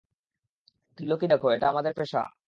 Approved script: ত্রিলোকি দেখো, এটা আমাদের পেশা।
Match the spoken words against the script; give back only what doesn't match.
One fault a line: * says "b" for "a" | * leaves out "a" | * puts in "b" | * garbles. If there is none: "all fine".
all fine